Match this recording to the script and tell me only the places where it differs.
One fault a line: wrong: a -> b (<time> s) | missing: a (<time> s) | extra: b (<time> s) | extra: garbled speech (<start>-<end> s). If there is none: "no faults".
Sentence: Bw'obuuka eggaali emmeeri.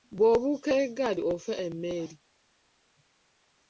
extra: ofa (1.3 s)